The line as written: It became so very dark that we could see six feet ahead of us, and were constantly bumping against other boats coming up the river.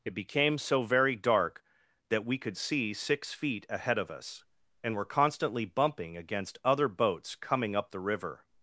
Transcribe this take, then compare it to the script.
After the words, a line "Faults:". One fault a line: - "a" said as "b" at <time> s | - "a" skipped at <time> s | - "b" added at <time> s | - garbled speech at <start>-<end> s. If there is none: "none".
It became so very dark that we could see six feet ahead of us, and were constantly bumping against other boats coming up the river.
Faults:
none